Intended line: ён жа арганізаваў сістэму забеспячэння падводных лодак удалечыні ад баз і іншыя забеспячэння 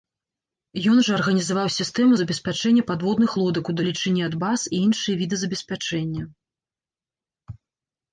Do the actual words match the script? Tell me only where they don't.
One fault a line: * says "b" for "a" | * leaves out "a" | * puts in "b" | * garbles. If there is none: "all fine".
* puts in "віды"